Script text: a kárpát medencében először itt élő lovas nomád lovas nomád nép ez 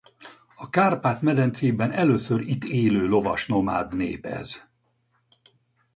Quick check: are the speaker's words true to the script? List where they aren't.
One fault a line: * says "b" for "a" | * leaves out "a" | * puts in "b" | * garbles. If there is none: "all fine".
* leaves out "lovas nomád"